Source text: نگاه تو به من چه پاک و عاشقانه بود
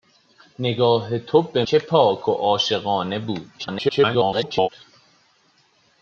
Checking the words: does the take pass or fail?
fail